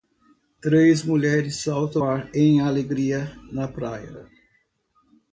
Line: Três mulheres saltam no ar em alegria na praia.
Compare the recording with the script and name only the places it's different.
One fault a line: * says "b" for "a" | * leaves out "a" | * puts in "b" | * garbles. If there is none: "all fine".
* leaves out "no"